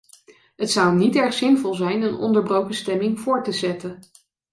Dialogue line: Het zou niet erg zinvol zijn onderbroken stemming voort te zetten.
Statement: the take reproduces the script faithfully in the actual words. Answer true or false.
false